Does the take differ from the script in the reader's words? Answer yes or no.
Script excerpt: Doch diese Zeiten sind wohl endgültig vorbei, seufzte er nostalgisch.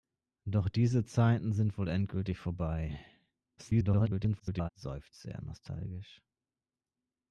yes